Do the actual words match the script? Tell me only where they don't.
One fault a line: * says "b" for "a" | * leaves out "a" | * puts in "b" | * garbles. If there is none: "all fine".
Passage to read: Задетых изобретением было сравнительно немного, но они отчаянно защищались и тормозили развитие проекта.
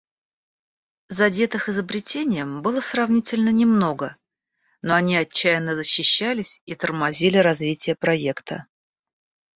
all fine